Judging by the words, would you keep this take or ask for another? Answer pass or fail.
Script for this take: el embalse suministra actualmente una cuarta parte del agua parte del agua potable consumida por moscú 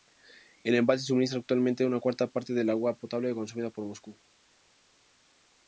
fail